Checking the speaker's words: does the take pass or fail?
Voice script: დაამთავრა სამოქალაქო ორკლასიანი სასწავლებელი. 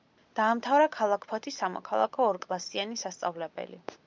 fail